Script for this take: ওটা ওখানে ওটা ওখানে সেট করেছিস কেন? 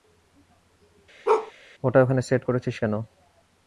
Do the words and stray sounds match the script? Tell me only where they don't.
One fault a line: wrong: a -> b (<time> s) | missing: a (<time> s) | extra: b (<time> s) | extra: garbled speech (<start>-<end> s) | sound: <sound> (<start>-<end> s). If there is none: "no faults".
sound: bark (1.2-1.5 s)
missing: ওটা ওখানে (2.2 s)